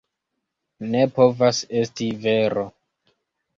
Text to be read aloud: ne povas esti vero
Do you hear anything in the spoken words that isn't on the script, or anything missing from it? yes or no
no